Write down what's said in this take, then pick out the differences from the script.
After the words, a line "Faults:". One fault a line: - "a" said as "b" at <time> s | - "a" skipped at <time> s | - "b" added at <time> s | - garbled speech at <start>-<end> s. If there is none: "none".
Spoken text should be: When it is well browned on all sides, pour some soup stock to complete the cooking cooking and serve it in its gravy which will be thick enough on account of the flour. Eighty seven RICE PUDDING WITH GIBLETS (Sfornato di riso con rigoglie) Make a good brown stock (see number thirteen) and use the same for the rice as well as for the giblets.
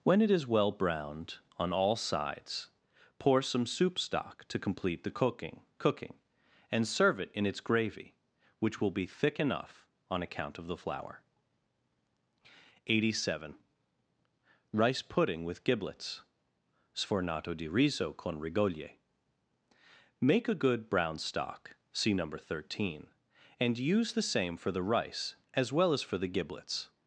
When it is well browned on all sides, pour some soup stock to complete the cooking cooking and serve it in its gravy which will be thick enough on account of the flour. Eighty seven RICE PUDDING WITH GIBLETS (Sfornato di riso con rigoglie) Make a good brown stock (see number thirteen) and use the same for the rice as well as for the giblets.
Faults:
none